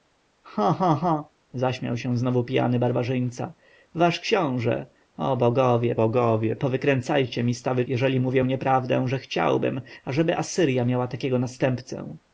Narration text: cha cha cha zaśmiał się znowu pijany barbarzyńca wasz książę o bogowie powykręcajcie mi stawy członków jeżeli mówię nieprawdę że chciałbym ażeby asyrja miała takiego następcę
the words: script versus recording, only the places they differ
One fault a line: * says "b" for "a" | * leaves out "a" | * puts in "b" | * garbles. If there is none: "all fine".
* puts in "bogowie"
* leaves out "członków"